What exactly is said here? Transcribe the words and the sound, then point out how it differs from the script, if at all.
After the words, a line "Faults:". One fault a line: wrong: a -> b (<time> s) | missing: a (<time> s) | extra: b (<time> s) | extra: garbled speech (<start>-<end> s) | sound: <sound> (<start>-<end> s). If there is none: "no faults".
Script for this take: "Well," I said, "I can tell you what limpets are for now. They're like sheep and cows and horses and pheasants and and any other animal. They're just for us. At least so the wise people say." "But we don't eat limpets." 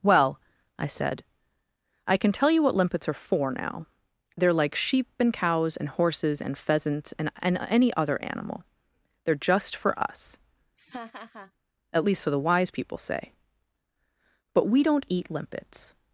"Well," I said, "I can tell you what limpets are for now. They're like sheep and cows and horses and pheasants and and any other animal. They're just for us. At least so the wise people say." "But we don't eat limpets."
Faults:
sound: laugh (10.8-11.5 s)